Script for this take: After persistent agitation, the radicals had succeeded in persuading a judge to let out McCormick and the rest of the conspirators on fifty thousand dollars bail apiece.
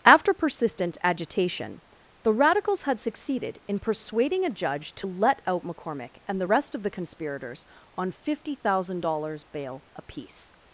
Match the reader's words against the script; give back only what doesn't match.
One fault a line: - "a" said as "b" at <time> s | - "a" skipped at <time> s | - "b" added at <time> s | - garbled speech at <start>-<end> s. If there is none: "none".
none